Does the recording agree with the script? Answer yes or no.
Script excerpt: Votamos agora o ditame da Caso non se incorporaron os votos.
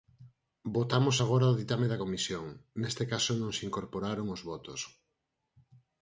no